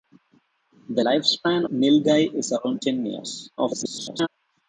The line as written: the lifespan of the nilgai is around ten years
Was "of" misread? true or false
true